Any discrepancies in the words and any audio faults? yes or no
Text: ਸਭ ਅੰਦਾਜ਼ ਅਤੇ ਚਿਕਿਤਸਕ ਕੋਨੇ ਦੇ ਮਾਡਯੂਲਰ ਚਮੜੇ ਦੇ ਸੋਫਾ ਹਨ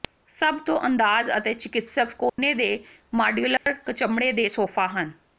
yes